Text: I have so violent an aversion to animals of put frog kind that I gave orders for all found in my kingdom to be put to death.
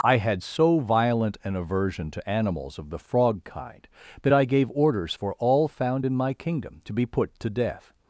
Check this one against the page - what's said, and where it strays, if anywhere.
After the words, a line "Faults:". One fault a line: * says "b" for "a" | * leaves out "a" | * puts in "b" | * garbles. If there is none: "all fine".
I had so violent an aversion to animals of the frog kind that I gave orders for all found in my kingdom to be put to death.
Faults:
* says "had" for "have"
* says "the" for "put"